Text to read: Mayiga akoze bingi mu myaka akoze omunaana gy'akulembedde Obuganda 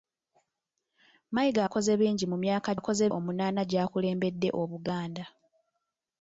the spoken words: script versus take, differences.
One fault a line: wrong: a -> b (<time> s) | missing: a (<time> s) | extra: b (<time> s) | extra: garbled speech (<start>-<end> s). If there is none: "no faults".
no faults